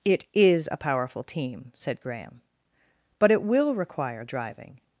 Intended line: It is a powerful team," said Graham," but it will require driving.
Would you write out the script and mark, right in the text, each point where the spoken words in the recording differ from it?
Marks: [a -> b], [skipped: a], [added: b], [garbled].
It is a powerful team," said Graham," but it will require driving.